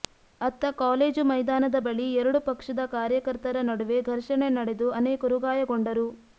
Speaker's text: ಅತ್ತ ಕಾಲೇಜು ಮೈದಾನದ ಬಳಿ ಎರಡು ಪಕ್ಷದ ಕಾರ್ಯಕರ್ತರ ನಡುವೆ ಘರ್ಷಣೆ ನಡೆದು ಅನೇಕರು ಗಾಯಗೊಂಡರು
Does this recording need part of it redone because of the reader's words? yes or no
no